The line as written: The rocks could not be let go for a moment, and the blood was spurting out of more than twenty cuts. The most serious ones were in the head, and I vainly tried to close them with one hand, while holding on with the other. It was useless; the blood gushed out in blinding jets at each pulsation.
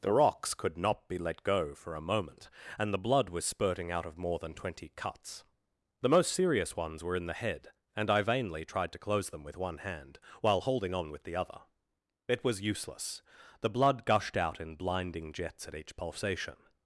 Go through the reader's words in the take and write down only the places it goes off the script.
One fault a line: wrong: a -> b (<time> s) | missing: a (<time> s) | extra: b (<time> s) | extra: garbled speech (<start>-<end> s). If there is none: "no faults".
no faults